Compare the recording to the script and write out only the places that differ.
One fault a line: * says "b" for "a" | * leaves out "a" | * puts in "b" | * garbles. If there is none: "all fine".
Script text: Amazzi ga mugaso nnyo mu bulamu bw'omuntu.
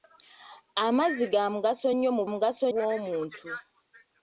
* says "mugaso" for "bulamu"